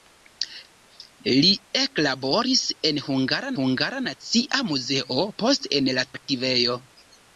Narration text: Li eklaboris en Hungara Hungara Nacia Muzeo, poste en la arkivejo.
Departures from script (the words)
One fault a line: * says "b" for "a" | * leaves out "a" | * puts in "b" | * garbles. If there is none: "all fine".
all fine